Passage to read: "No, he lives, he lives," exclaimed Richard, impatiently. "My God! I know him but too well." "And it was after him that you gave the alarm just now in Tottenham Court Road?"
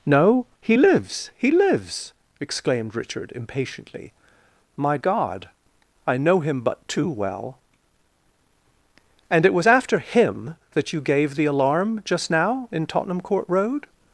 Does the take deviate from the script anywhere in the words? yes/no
no